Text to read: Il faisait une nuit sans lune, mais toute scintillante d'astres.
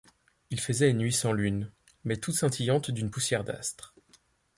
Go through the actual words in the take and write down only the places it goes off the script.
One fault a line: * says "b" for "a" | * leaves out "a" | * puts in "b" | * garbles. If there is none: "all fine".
* puts in "d'une poussière"